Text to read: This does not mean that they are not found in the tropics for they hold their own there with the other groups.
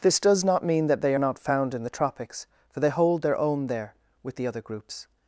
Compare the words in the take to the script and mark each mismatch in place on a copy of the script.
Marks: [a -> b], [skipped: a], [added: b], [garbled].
This does not mean that they [skipped: are] not found in the tropics for they hold their own there with the other groups.